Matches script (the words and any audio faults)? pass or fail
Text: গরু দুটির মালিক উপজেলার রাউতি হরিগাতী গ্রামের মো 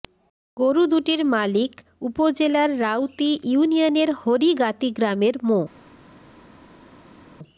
fail